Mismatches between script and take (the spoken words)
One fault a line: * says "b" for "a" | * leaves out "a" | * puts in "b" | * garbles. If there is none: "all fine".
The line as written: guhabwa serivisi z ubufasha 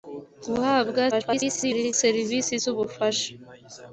* garbles